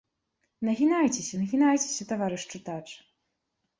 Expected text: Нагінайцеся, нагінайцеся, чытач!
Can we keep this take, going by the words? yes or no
no